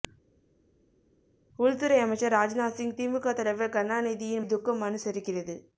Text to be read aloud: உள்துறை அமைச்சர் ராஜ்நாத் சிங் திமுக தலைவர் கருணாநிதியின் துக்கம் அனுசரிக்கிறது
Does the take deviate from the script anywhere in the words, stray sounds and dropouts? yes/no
no